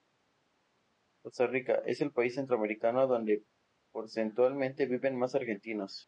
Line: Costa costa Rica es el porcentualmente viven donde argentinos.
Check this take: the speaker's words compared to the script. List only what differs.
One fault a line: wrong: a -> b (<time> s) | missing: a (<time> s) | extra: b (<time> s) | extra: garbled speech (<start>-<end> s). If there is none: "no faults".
missing: costa (1.5 s)
extra: país centroamericano donde (2.1 s)
wrong: donde -> más (5.2 s)